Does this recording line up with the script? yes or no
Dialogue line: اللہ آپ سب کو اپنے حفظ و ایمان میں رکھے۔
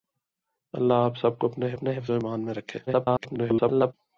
no